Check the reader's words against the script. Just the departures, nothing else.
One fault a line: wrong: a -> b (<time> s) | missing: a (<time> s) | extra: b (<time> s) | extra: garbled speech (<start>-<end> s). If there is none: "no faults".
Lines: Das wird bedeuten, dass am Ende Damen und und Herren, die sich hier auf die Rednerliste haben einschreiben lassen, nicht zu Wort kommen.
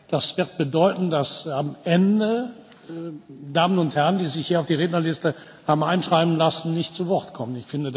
missing: und (4.0 s)